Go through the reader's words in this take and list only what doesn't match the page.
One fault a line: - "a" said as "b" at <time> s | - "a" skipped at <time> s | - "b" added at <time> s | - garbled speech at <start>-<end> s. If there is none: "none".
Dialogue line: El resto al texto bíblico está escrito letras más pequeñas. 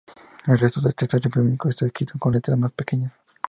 - "al" said as "del" at 0.8 s
- "con" added at 2.2 s